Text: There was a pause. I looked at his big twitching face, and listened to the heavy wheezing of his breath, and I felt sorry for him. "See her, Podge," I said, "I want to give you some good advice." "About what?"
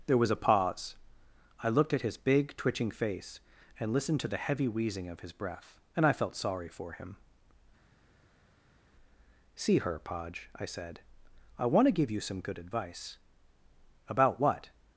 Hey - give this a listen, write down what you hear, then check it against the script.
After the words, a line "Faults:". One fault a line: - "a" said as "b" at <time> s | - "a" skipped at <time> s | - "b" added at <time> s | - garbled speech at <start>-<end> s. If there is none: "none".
There was a pause. I looked at his big twitching face, and listened to the heavy wheezing of his breath, and I felt sorry for him. "See her, Podge," I said, "I want to give you some good advice." "About what?"
Faults:
none